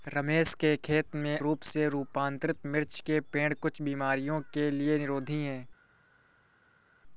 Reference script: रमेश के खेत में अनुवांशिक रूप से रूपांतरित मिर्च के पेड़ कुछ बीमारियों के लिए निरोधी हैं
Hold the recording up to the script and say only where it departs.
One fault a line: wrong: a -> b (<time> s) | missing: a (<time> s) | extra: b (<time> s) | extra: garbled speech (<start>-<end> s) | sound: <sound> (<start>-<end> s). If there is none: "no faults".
missing: अनुवांशिक (1.4 s)